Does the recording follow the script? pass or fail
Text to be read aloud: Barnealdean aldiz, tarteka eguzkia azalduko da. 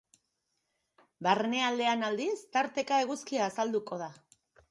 pass